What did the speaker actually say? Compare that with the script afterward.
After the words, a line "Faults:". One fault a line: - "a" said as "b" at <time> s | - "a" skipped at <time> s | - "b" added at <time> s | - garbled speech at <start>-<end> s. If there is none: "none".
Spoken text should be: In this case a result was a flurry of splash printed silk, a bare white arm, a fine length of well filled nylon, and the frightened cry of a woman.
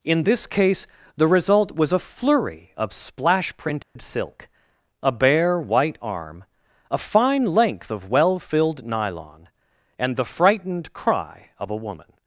In this case the result was a flurry of splash printed silk, a bare white arm, a fine length of well filled nylon, and the frightened cry of a woman.
Faults:
- "a" said as "the" at 1.1 s